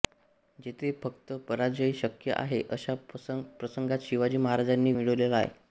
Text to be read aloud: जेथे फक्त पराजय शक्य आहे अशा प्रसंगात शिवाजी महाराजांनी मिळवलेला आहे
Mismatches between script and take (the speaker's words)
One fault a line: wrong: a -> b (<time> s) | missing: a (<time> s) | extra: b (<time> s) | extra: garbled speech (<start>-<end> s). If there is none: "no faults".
no faults